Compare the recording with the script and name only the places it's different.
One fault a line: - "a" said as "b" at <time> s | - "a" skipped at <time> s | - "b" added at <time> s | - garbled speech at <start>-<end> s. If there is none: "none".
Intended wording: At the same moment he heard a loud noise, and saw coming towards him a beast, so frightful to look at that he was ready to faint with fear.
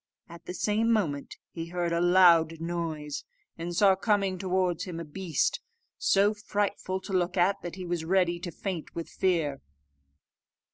none